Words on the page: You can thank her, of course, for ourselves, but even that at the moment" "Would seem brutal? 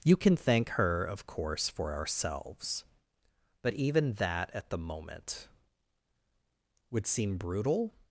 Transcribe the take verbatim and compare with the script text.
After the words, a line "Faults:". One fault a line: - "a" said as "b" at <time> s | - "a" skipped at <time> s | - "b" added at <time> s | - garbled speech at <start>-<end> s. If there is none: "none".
You can thank her, of course, for ourselves, but even that at the moment" "Would seem brutal?
Faults:
none